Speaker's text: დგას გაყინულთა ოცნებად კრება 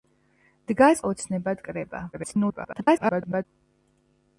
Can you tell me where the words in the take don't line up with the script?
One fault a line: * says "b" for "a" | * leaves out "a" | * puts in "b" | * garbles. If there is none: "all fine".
* leaves out "გაყინულთა"
* garbles